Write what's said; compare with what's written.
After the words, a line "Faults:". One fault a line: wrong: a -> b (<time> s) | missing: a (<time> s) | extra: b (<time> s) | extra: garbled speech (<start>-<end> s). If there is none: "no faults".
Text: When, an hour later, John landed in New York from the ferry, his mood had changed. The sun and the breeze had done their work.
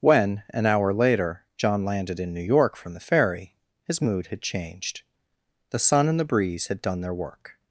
When, an hour later, John landed in New York from the ferry, his mood had changed. The sun and the breeze had done their work.
Faults:
no faults